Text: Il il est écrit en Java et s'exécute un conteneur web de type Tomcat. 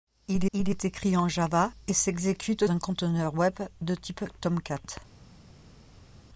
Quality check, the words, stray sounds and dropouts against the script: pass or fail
pass